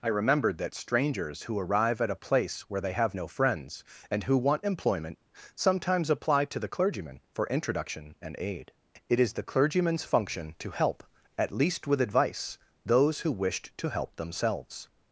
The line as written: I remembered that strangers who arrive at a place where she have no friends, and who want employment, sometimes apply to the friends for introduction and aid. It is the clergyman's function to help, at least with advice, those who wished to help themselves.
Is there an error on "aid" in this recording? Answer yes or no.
no